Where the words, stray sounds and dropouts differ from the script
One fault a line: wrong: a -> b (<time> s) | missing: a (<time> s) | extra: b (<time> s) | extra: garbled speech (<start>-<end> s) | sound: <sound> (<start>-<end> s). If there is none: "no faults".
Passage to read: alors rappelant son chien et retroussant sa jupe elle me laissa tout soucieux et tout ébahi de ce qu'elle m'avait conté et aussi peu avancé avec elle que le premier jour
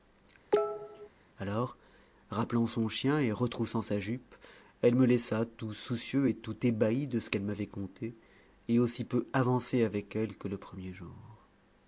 sound: cough (0.5-1.1 s)